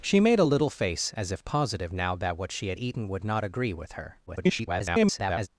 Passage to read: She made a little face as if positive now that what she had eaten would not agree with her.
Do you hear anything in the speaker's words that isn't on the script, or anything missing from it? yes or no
yes